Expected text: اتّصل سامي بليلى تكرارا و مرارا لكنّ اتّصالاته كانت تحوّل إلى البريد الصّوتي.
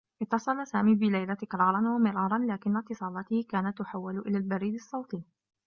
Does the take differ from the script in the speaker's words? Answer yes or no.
no